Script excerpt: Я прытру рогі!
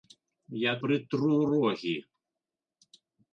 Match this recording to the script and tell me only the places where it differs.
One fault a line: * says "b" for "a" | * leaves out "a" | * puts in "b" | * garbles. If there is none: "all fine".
all fine